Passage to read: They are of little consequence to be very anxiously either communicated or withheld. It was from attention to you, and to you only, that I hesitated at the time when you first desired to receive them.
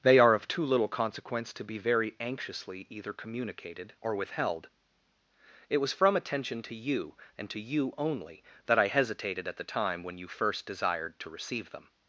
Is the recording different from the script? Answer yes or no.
yes